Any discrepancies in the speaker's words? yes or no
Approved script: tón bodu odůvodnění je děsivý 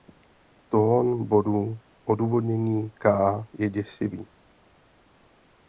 yes